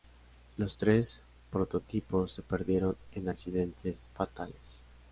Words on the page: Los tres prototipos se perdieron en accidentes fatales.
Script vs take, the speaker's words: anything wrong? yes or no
no